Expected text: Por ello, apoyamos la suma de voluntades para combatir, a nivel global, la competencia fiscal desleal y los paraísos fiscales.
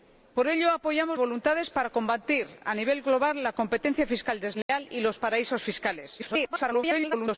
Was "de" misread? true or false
true